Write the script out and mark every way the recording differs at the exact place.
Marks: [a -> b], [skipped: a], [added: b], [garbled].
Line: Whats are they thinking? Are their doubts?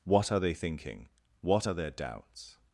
[Whats -> What] are they thinking? [added: What] Are their doubts?